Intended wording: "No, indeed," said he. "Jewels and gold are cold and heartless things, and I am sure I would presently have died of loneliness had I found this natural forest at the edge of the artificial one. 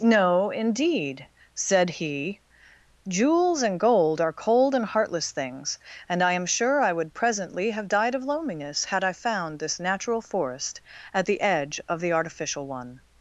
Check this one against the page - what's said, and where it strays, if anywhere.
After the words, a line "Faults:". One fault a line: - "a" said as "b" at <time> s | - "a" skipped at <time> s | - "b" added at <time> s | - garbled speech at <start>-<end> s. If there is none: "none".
"No, indeed," said he. "Jewels and gold are cold and heartless things, and I am sure I would presently have died of loneliness had I found this natural forest at the edge of the artificial one.
Faults:
none